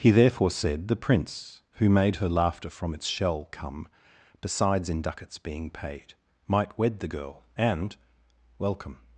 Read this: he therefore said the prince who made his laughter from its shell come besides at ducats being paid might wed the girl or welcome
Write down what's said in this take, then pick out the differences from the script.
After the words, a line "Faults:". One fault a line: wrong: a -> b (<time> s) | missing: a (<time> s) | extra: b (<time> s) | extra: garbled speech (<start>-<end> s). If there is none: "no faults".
he therefore said the prince who made her laughter from its shell come besides in ducats being paid might wed the girl and welcome
Faults:
wrong: his -> her (2.1 s)
wrong: at -> in (4.9 s)
wrong: or -> and (7.6 s)